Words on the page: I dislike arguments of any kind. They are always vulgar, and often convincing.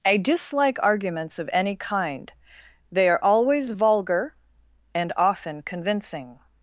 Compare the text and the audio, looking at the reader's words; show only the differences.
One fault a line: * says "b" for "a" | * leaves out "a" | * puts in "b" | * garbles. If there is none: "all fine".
all fine